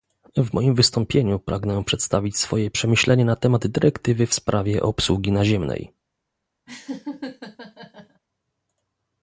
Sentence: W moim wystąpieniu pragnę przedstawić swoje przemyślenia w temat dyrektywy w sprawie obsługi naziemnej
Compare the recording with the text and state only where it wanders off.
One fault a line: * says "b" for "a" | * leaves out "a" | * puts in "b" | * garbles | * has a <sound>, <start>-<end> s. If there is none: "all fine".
* says "na" for "w"
* has a laugh, 6.7-8.2 s